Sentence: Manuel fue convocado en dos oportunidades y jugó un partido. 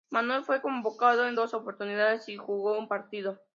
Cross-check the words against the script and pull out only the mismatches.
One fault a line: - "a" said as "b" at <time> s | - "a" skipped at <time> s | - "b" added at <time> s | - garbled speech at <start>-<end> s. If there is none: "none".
none